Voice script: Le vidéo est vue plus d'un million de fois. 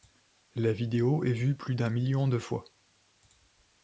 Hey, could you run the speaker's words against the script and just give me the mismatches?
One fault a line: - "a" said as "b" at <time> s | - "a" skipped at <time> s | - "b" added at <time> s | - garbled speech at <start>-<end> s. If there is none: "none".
- "Le" said as "La" at 0.6 s